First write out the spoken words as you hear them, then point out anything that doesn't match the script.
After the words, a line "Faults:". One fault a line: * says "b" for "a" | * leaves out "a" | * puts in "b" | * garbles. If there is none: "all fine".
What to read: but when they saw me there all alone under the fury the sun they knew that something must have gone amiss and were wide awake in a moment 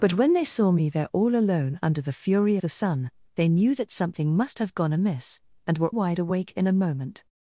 but when they saw me there all alone under the fury the sun they knew that something must have gone amiss and were wide awake in a moment
Faults:
all fine